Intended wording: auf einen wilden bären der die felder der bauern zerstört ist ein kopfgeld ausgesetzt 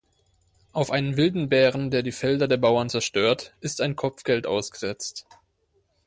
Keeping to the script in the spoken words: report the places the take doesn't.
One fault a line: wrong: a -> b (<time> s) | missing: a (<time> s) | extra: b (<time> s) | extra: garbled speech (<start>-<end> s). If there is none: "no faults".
no faults